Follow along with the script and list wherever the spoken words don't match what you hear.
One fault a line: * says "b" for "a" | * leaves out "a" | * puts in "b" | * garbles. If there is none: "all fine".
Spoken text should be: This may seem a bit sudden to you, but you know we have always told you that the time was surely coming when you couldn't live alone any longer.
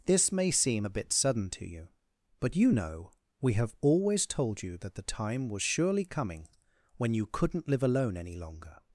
all fine